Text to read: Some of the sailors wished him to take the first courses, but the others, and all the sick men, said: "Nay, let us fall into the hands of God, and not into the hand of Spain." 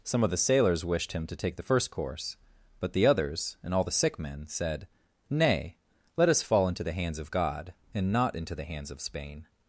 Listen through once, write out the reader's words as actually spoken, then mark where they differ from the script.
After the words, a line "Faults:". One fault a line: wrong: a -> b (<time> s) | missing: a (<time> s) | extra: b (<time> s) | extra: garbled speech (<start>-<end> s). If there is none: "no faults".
Some of the sailors wished him to take the first course, but the others, and all the sick men, said: "Nay, let us fall into the hands of God, and not into the hands of Spain."
Faults:
wrong: courses -> course (1.9 s)
wrong: hand -> hands (8.6 s)